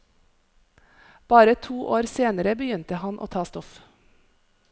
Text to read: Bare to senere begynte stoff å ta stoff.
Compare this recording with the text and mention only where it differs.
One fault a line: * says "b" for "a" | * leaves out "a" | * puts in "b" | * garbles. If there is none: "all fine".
* puts in "år"
* says "han" for "stoff"